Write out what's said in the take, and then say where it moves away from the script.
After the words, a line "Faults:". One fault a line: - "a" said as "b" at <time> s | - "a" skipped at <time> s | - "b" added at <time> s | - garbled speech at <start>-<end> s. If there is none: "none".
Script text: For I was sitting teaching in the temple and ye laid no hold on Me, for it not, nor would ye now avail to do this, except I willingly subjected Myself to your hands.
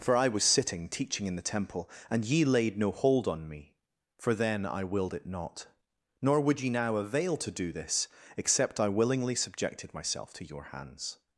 For I was sitting teaching in the temple and ye laid no hold on Me, for then I willed it not, nor would ye now avail to do this, except I willingly subjected Myself to your hands.
Faults:
- "then I willed" added at 4.3 s